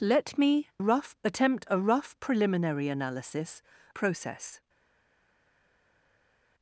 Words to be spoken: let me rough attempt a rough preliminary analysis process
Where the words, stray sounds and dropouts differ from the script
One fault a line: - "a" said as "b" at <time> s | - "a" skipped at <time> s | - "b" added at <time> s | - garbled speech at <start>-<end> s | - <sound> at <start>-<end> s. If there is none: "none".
none